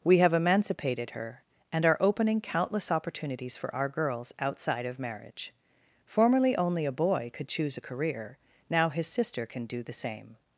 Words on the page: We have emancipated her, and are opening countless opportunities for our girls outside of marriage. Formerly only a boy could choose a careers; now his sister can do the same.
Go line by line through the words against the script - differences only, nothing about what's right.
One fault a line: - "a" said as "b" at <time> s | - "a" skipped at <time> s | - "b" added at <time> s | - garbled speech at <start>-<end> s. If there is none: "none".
- "careers" said as "career" at 7.8 s